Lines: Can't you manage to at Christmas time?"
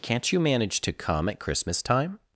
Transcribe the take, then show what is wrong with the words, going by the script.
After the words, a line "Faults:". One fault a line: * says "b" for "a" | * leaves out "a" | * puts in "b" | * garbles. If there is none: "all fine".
Can't you manage to come at Christmas time?"
Faults:
* puts in "come"